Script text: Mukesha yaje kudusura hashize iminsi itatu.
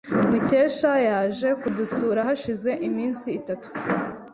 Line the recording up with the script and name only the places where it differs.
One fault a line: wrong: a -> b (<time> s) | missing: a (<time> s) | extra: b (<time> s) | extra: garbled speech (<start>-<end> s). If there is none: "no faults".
no faults